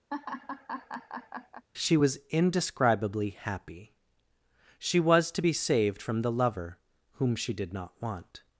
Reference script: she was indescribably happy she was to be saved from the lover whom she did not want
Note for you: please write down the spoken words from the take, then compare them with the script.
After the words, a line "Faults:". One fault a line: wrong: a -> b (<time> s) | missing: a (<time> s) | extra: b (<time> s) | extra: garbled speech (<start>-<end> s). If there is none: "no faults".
she was indescribably happy she was to be saved from the lover whom she did not want
Faults:
no faults